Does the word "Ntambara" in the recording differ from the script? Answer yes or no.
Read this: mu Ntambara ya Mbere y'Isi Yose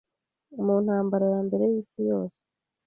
no